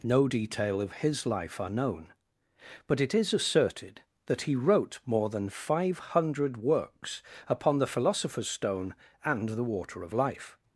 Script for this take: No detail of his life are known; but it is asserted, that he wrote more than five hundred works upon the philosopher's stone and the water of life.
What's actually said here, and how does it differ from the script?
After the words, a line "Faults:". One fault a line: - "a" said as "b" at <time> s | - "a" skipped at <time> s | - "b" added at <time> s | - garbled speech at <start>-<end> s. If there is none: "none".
No detail of his life are known; but it is asserted, that he wrote more than five hundred works upon the philosopher's stone and the water of life.
Faults:
none